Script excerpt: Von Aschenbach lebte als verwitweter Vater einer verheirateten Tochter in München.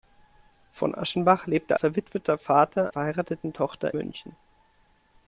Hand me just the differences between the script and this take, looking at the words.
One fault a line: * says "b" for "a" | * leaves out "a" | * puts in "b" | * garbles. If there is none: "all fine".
* leaves out "als"
* leaves out "einer"
* leaves out "in"